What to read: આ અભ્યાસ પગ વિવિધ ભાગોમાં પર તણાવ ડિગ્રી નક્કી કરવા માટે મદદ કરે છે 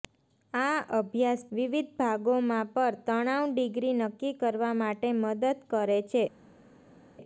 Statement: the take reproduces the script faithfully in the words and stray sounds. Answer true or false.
false